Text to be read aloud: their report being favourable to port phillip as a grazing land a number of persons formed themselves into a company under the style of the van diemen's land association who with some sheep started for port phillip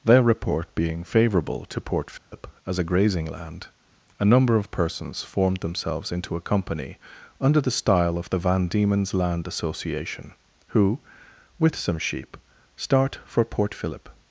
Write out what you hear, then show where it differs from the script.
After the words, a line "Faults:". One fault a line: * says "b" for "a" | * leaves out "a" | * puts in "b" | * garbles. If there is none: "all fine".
their report being favourable to port phillip as a grazing land a number of persons formed themselves into a company under the style of the van diemen's land association who with some sheep start for port phillip
Faults:
* says "start" for "started"